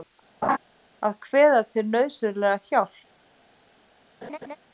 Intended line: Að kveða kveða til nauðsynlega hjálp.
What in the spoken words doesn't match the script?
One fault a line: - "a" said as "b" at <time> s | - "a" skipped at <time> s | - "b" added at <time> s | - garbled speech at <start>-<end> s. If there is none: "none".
- "kveða" skipped at 1.6 s